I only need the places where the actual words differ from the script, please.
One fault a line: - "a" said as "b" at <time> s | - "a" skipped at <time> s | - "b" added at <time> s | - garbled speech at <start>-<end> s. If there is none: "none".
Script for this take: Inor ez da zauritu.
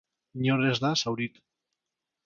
none